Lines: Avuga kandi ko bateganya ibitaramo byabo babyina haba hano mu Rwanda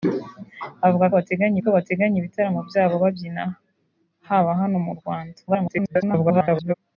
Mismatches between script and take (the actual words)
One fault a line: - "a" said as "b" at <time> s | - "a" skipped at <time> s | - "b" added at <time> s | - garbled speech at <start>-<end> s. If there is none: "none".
- "kandi" said as "bateganya" at 1.2 s
- garbled speech at 5.5-6.7 s